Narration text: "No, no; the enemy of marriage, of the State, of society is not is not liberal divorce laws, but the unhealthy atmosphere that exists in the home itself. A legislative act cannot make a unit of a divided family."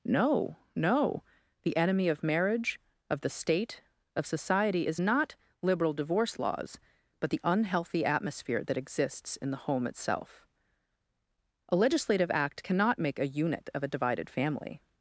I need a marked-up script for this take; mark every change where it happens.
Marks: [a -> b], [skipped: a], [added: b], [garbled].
"No, no; the enemy of marriage, of the State, of society is not [skipped: is not] liberal divorce laws, but the unhealthy atmosphere that exists in the home itself. A legislative act cannot make a unit of a divided family."